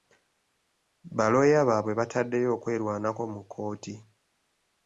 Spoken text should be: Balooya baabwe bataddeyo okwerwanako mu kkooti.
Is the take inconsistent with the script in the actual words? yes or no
no